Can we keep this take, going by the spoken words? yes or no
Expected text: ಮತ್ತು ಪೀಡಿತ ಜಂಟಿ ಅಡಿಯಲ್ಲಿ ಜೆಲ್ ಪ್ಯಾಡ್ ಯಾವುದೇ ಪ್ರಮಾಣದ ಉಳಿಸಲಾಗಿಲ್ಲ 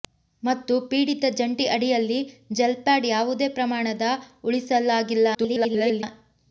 no